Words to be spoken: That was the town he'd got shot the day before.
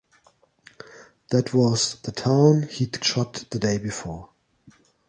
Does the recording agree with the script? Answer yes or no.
no